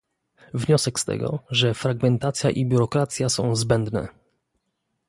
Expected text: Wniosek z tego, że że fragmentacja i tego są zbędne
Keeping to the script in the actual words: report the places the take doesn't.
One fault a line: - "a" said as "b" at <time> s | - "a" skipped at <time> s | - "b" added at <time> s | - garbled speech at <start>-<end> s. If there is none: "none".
- "że" skipped at 1.7 s
- "tego" said as "biurokracja" at 2.6 s